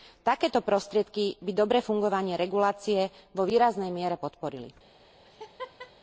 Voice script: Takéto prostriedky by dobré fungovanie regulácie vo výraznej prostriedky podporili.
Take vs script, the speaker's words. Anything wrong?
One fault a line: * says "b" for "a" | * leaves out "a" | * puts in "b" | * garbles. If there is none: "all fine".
* says "miere" for "prostriedky"